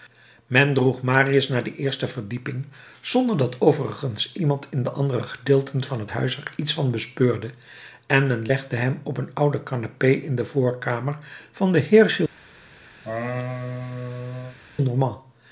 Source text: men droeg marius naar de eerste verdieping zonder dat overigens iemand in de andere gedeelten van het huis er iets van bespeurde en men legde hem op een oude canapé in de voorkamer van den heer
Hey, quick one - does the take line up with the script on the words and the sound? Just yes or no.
no